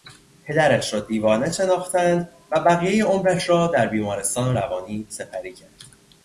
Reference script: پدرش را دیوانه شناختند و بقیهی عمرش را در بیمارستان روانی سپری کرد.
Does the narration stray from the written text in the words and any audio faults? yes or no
no